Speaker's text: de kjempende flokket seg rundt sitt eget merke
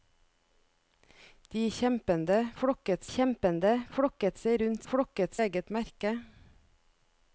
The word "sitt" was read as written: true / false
false